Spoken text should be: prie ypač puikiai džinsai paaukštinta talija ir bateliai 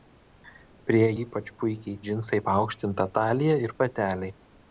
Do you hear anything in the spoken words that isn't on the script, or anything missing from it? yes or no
no